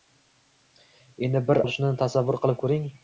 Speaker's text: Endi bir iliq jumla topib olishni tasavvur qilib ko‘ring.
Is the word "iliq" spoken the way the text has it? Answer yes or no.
no